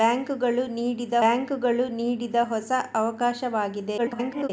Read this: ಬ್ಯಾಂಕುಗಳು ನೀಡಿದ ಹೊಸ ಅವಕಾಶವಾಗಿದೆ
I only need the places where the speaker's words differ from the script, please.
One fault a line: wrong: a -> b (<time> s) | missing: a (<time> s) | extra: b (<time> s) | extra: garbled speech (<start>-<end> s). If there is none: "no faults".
extra: ಬ್ಯಾಂಕುಗಳು ನೀಡಿದ (1.2 s)
extra: garbled speech (4.0-4.5 s)